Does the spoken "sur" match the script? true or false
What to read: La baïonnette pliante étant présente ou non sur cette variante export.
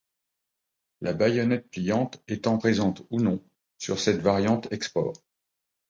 true